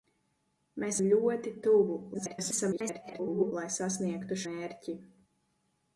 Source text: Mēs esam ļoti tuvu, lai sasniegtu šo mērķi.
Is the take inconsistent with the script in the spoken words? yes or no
yes